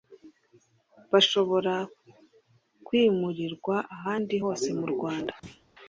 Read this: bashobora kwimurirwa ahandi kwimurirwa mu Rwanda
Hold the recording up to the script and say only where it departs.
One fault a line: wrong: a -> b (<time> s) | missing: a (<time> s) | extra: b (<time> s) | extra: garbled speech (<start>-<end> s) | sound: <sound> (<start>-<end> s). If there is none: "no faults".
wrong: kwimurirwa -> hose (4.4 s)
sound: thud (5.4-5.7 s)